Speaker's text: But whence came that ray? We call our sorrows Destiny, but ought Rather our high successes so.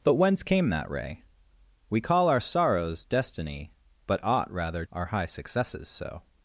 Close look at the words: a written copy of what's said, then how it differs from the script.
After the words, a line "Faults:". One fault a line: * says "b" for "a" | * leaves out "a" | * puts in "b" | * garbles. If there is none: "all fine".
But whence came that ray? We call our sorrows Destiny, but ought Rather our high successes so.
Faults:
all fine